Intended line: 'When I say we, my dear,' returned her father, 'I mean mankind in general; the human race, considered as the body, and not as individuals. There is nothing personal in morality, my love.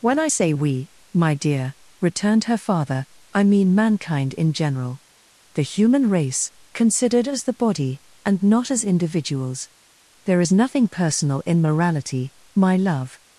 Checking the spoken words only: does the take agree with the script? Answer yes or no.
yes